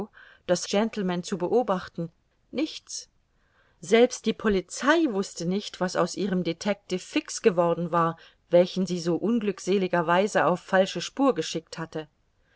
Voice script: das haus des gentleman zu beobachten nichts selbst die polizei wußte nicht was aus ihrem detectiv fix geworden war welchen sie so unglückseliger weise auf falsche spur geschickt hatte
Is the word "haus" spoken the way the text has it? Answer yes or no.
no